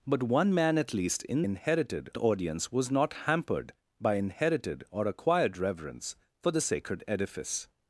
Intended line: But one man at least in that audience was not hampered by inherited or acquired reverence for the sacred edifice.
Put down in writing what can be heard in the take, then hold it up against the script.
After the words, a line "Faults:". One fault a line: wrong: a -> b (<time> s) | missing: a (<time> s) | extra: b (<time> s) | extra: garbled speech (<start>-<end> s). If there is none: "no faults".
But one man at least in inherited audience was not hampered by inherited or acquired reverence for the sacred edifice.
Faults:
wrong: that -> inherited (1.4 s)